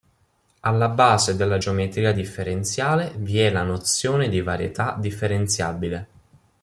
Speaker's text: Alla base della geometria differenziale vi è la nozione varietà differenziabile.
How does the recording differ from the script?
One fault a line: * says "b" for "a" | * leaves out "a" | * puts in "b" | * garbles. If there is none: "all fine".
* puts in "di"